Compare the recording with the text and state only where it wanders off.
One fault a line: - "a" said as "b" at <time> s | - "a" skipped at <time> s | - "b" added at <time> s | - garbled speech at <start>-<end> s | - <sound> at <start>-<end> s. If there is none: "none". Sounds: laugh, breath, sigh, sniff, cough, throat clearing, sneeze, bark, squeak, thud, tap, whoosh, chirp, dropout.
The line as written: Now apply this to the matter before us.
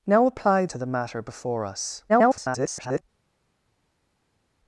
- "this" skipped at 0.7 s
- garbled speech at 2.1-3.0 s